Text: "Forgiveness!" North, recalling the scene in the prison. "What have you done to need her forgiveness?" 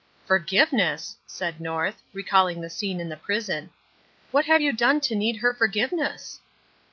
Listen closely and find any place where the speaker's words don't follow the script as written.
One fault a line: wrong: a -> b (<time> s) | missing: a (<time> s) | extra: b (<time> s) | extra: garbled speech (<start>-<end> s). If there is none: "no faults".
extra: said (1.3 s)